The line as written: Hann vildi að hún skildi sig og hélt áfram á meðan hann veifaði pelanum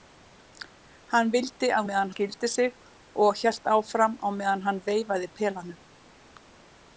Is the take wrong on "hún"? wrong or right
wrong